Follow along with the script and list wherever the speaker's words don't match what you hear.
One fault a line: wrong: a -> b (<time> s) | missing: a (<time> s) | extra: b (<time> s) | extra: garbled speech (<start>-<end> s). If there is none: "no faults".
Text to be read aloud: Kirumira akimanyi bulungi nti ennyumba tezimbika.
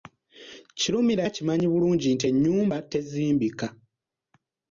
no faults